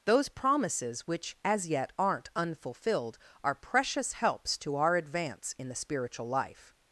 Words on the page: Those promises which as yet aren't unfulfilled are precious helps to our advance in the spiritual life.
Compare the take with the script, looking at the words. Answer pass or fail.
pass